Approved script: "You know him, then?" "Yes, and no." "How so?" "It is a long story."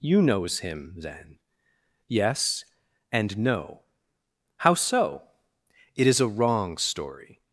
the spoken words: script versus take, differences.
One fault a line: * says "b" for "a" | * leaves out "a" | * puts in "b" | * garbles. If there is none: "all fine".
* says "knows" for "know"
* says "wrong" for "long"